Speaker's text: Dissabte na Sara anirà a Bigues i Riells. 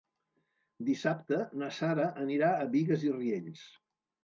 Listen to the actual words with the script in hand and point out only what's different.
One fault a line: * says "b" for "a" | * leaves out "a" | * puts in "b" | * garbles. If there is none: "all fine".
all fine